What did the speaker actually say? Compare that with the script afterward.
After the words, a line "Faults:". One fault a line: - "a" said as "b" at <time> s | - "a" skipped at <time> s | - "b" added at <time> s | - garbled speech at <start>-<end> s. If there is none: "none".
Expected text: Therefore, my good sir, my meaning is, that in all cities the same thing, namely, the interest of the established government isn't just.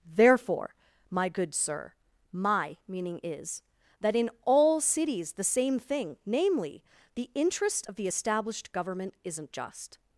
Therefore, my good sir, my meaning is, that in all cities the same thing, namely, the interest of the established government isn't just.
Faults:
none